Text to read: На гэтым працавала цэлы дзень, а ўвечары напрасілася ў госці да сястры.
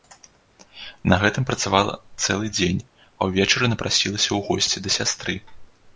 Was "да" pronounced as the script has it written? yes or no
yes